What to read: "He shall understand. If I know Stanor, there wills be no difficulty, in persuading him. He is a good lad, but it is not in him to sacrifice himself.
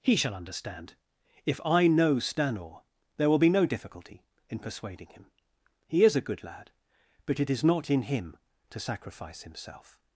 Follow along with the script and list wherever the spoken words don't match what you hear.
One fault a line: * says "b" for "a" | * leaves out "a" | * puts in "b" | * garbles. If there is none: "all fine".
* says "will" for "wills"